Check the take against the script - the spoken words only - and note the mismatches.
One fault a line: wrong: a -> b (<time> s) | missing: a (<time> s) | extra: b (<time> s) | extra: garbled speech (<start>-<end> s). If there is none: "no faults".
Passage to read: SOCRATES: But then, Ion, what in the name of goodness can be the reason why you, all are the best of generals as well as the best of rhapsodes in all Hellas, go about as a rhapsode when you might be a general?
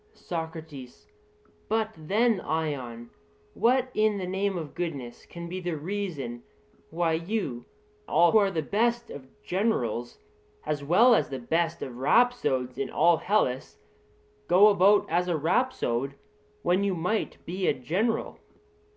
no faults